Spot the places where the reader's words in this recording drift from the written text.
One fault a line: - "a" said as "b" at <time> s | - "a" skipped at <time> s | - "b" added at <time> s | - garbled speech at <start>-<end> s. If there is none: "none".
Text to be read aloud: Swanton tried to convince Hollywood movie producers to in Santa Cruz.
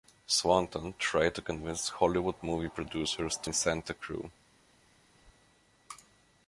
none